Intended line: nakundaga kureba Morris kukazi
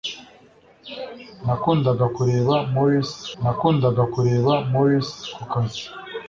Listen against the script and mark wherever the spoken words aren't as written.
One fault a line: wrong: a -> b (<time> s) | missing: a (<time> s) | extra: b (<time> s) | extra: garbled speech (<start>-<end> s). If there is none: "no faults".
extra: nakundaga kureba Morris (3.4 s)